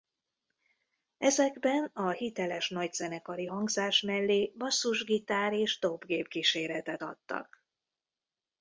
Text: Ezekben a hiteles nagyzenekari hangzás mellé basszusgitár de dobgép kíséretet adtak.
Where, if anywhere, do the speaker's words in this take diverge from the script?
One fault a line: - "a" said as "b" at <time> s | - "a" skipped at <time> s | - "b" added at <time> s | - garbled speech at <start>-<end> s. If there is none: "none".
- "de" said as "és" at 5.5 s